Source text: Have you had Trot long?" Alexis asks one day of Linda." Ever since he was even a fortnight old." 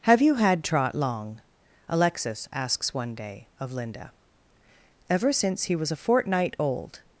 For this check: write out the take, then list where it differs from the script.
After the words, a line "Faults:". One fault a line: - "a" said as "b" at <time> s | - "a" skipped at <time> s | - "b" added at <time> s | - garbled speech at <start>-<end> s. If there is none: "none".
Have you had Trot long?" Alexis asks one day of Linda." Ever since he was a fortnight old."
Faults:
- "even" skipped at 5.9 s